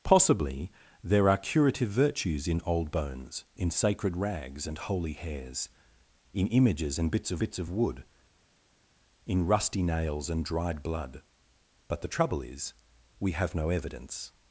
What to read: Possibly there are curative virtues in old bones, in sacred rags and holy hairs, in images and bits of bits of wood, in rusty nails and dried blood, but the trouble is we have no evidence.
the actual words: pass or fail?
pass